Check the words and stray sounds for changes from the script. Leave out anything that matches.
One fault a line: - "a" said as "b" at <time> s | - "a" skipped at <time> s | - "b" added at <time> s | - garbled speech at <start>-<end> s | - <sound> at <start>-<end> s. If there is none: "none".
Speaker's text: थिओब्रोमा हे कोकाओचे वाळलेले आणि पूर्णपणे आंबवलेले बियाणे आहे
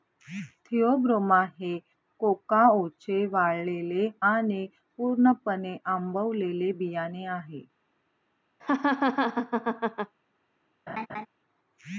- laugh at 8.6-10.1 s
- laugh at 10.9-11.3 s